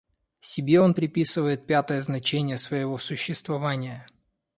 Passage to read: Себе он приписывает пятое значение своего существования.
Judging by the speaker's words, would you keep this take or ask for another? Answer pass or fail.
pass